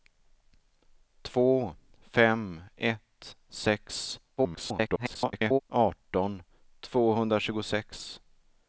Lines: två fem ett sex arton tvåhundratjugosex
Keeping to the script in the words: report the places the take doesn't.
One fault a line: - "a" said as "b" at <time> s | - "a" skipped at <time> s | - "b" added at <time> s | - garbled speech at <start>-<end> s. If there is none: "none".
- garbled speech at 4.4-5.6 s